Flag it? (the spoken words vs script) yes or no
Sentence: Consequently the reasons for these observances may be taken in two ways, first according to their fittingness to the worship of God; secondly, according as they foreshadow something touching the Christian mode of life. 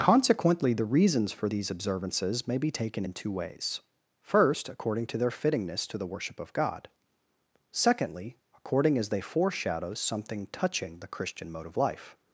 no